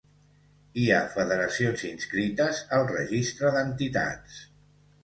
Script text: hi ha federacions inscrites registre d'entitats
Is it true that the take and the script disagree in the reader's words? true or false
true